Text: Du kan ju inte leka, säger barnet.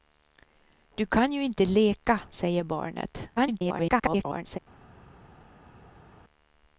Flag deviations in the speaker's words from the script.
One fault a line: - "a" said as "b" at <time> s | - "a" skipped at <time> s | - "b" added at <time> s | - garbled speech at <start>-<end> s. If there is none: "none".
- garbled speech at 3.4-4.6 s